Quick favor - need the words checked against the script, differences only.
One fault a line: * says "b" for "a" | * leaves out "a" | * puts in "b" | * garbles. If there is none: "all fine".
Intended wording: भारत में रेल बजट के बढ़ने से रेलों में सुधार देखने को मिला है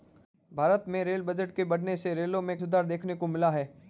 all fine